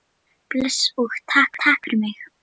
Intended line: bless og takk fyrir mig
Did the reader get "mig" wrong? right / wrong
right